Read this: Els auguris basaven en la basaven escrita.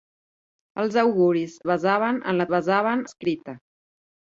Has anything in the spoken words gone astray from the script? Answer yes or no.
no